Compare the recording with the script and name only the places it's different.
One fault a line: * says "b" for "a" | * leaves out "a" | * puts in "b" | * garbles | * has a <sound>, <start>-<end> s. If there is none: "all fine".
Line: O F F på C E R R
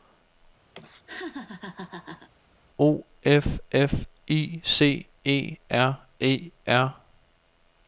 * has a laugh, 0.7-2.3 s
* says "I" for "på"
* puts in "E"